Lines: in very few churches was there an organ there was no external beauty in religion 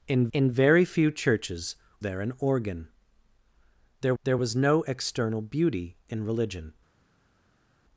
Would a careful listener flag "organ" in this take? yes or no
no